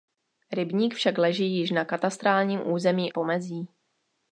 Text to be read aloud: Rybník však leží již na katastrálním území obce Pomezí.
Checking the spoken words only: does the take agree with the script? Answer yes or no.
no